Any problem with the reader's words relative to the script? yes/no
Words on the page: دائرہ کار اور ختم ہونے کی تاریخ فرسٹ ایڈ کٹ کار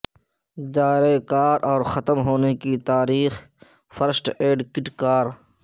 no